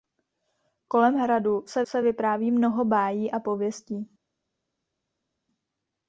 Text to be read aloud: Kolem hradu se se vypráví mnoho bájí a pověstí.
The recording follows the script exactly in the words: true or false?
true